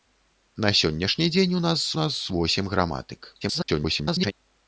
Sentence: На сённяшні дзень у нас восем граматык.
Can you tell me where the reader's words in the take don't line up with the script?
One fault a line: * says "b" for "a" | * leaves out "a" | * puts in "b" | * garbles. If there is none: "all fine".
* puts in "нас"
* garbles